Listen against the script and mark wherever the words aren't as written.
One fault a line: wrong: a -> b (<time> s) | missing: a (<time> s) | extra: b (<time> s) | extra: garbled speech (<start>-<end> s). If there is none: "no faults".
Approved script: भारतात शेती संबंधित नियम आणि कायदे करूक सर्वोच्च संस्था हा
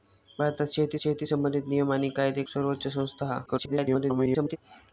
extra: शेती (0.9 s)
missing: करूक (2.4 s)
extra: garbled speech (3.5-4.6 s)